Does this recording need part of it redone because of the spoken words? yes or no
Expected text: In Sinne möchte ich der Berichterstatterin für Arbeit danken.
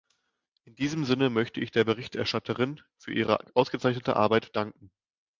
yes